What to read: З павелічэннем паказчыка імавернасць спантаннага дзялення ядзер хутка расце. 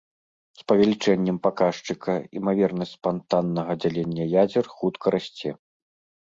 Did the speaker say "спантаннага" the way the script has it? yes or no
yes